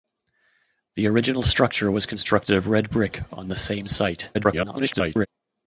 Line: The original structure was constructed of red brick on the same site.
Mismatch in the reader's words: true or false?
true